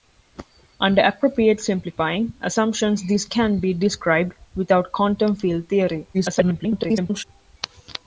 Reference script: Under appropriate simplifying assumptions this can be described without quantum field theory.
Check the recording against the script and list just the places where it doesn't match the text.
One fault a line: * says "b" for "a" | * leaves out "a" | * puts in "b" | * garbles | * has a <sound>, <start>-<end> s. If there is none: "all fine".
* garbles